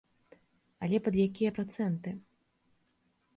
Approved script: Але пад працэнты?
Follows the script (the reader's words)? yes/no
no